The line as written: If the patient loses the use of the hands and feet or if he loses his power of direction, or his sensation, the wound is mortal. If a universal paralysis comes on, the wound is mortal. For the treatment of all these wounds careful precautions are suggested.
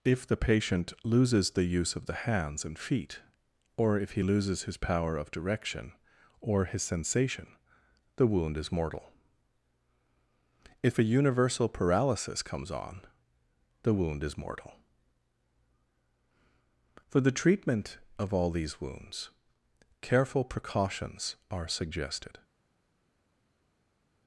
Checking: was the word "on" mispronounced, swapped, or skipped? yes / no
no